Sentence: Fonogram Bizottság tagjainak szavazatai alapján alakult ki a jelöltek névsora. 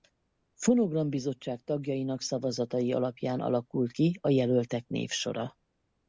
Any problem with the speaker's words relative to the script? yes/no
no